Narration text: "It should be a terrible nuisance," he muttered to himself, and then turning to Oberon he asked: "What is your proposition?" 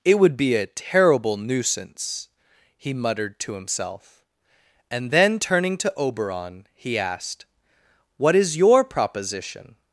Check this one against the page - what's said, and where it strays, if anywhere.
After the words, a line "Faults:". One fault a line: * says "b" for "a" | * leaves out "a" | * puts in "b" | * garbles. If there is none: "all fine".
"It would be a terrible nuisance," he muttered to himself, and then turning to Oberon he asked: "What is your proposition?"
Faults:
* says "would" for "should"